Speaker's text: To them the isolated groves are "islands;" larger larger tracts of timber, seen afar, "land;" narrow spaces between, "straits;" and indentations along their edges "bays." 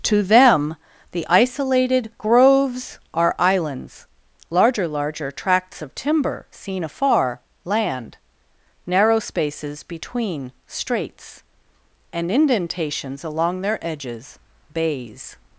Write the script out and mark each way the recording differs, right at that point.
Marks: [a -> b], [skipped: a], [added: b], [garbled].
To them the isolated groves are "islands;" larger larger tracts of timber, seen afar, "land;" narrow spaces between, "straits;" and indentations along their edges "bays."